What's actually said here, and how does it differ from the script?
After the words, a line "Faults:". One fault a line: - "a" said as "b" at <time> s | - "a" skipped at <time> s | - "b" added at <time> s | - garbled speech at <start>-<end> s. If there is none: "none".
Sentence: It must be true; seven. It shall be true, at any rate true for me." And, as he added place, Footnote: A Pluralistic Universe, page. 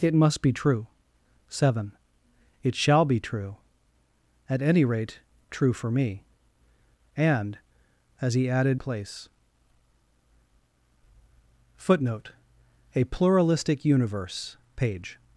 It must be true; seven. It shall be true, at any rate true for me." And, as he added place, Footnote: A Pluralistic Universe, page.
Faults:
none